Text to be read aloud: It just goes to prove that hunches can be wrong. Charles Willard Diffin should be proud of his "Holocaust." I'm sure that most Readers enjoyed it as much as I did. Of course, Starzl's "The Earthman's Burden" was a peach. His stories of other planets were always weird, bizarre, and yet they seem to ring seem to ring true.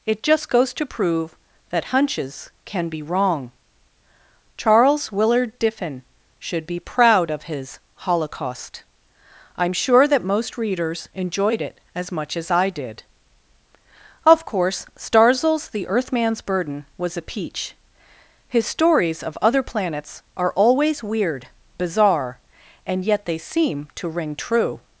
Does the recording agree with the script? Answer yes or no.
no